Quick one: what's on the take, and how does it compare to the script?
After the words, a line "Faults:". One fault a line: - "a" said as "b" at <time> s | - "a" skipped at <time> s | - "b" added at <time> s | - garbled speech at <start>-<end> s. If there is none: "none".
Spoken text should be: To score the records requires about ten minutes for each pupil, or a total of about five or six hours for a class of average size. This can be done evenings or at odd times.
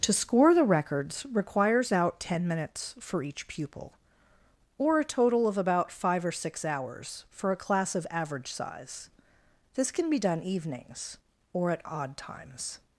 To score the records requires out ten minutes for each pupil, or a total of about five or six hours for a class of average size. This can be done evenings or at odd times.
Faults:
- "about" said as "out" at 1.9 s